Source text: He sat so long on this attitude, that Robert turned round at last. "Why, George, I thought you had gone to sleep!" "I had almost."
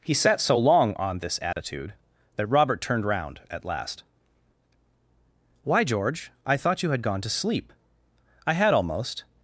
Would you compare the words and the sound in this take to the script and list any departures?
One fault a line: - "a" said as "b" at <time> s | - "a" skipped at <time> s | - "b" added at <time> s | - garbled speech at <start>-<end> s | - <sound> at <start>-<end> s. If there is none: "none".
- dropout at 1.5-1.6 s